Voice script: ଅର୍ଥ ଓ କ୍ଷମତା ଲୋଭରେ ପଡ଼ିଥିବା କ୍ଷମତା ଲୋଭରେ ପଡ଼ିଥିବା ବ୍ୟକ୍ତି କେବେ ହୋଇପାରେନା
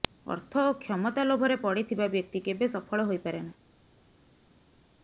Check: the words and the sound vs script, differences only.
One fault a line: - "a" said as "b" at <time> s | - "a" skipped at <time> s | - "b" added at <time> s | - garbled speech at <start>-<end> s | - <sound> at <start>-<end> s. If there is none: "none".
- "କ୍ଷମତା ଲୋଭରେ ପଡ଼ିଥିବା" skipped at 2.1 s
- "ସଫଳ" added at 2.7 s